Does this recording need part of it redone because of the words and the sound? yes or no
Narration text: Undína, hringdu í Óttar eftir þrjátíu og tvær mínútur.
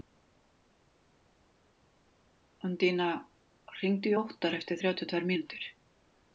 no